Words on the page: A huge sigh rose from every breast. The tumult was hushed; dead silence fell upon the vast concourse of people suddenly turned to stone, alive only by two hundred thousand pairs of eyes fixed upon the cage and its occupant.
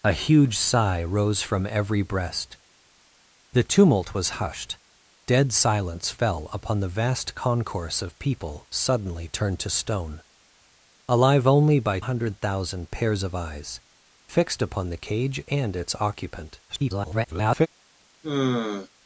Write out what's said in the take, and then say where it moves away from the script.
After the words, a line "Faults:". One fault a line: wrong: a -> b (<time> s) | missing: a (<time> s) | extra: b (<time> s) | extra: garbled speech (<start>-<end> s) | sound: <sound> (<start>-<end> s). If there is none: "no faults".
A huge sigh rose from every breast. The tumult was hushed; dead silence fell upon the vast concourse of people suddenly turned to stone, alive only by hundred thousand pairs of eyes fixed upon the cage and its occupant. [garbled]
Faults:
missing: two (12.0 s)
extra: garbled speech (16.7-17.7 s)
sound: sigh (18.2-18.9 s)